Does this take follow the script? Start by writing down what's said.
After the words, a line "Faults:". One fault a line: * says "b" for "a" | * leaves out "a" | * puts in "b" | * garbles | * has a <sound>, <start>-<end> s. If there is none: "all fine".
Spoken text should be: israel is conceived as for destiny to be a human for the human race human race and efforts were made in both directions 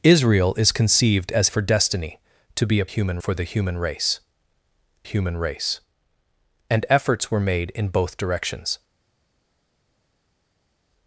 israel is conceived as for destiny to be a human for the human race human race and efforts were made in both directions
Faults:
all fine